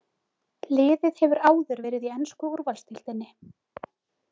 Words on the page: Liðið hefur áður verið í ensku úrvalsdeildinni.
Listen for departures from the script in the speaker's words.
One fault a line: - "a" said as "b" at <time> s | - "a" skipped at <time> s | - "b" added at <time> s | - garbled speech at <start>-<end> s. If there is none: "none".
none